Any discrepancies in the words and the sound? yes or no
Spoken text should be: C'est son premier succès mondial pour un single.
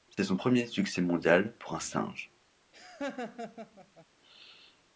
yes